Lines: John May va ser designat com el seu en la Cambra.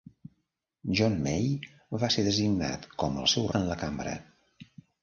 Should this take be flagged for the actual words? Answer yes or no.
no